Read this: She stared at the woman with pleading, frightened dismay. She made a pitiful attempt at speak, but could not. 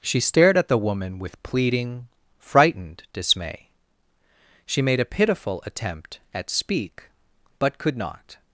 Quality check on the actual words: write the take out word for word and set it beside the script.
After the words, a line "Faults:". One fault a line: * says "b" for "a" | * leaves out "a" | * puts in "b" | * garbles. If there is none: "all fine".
She stared at the woman with pleading, frightened dismay. She made a pitiful attempt at speak, but could not.
Faults:
all fine